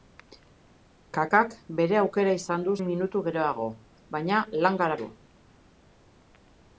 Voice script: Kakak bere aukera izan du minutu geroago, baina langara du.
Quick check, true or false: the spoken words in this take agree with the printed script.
true